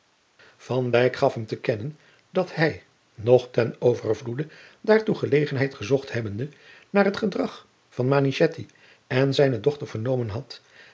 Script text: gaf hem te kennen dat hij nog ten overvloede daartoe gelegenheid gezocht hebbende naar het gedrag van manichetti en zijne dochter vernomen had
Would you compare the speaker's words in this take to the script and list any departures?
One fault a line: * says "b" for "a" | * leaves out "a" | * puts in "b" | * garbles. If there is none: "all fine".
all fine